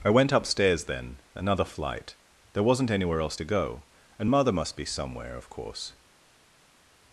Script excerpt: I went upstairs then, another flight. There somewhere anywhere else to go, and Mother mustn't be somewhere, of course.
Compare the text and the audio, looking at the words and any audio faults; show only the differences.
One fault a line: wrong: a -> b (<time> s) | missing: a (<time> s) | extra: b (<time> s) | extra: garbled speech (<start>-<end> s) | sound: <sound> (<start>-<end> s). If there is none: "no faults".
wrong: somewhere -> wasn't (2.6 s)
wrong: mustn't -> must (4.5 s)